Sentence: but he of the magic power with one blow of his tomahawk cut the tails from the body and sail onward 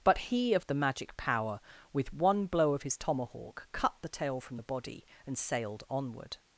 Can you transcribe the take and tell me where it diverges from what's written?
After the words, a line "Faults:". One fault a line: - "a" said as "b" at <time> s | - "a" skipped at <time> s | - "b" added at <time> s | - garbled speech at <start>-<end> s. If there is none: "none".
but he of the magic power with one blow of his tomahawk cut the tail from the body and sailed onward
Faults:
- "tails" said as "tail" at 4.1 s
- "sail" said as "sailed" at 5.4 s